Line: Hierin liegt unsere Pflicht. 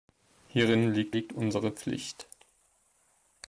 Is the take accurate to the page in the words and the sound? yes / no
no